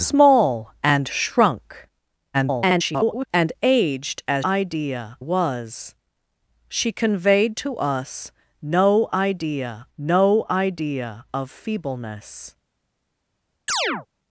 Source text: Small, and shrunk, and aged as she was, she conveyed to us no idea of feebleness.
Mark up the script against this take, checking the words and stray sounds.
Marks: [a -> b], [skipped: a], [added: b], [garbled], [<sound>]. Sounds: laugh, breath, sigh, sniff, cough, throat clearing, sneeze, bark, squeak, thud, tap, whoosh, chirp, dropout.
Small, and shrunk, [garbled] and aged as [she -> idea] was, she conveyed to us no idea [added: no idea] of feebleness. [chirp]